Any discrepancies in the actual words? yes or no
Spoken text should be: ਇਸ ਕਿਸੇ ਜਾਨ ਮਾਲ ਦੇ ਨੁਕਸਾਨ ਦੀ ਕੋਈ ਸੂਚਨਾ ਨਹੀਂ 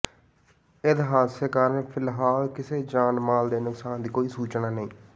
yes